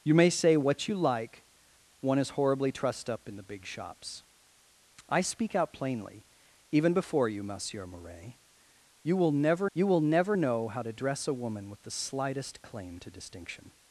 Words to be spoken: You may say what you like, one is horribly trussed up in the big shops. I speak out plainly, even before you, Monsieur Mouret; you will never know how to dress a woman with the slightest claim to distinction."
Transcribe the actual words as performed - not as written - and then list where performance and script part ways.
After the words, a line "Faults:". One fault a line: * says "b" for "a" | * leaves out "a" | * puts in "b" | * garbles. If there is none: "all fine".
You may say what you like, one is horribly trussed up in the big shops. I speak out plainly, even before you, Monsieur Mouret; you will never you will never know how to dress a woman with the slightest claim to distinction."
Faults:
* puts in "you will never"